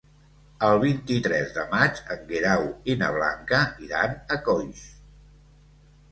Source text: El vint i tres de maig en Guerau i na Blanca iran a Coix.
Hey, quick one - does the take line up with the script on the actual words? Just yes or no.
yes